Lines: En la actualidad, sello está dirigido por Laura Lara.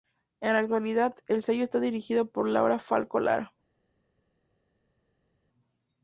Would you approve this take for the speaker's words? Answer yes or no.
no